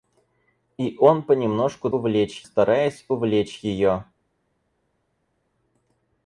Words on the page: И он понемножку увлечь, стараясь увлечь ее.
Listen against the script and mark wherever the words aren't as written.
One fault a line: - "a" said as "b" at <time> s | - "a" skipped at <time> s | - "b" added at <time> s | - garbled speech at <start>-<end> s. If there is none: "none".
none